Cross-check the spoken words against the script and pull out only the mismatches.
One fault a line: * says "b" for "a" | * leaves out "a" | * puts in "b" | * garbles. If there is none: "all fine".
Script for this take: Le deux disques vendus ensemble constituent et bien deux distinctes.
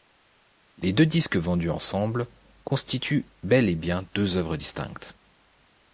* says "Les" for "Le"
* puts in "bel"
* puts in "œuvres"